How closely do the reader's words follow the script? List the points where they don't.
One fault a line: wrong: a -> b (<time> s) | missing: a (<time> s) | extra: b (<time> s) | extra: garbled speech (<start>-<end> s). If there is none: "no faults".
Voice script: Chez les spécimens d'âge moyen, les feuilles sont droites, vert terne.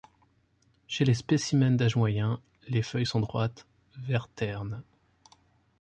no faults